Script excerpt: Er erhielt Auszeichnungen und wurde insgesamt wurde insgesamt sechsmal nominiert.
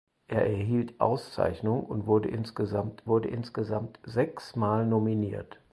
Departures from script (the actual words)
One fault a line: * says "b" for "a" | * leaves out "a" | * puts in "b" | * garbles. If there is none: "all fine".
all fine